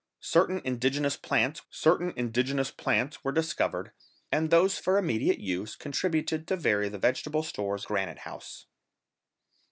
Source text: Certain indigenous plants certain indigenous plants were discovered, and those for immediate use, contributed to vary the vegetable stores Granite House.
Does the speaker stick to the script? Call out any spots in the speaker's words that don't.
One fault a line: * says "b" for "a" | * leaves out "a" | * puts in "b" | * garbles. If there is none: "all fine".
all fine